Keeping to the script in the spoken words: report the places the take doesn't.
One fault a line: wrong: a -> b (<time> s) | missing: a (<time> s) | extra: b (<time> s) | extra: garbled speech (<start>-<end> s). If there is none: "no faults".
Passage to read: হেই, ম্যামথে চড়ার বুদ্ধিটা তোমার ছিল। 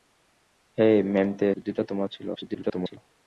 missing: চড়ার (1.5 s)
extra: garbled speech (2.3-3.0 s)